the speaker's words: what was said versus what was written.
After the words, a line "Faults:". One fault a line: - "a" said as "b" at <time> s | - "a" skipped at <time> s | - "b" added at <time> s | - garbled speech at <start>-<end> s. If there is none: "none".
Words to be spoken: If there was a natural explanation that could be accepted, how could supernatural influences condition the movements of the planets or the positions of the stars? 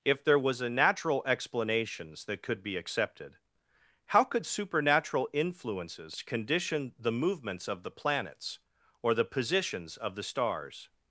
If there was a natural explanations that could be accepted, how could supernatural influences condition the movements of the planets or the positions of the stars?
Faults:
- "explanation" said as "explanations" at 1.2 s